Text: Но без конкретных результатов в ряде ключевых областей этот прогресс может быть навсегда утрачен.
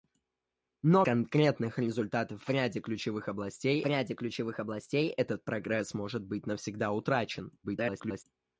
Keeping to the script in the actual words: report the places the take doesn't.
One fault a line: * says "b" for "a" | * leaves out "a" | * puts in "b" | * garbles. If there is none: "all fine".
* leaves out "без"
* puts in "ряде ключевых областей"
* garbles